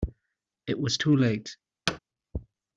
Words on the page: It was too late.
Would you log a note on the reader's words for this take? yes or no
no